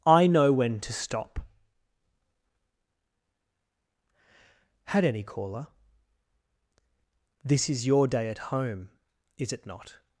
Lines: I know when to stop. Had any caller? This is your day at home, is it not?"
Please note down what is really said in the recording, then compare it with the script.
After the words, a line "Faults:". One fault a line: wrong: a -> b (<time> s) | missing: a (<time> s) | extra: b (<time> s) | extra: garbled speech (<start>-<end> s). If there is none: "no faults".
I know when to stop. Had any caller? This is your day at home, is it not?"
Faults:
no faults